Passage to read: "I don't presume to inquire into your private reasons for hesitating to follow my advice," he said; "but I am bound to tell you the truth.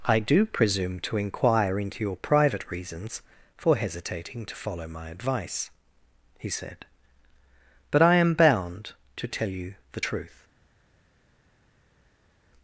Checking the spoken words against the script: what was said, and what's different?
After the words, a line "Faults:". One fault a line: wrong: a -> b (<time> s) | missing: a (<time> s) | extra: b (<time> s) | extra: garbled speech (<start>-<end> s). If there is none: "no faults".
"I do presume to inquire into your private reasons for hesitating to follow my advice," he said; "but I am bound to tell you the truth.
Faults:
wrong: don't -> do (0.2 s)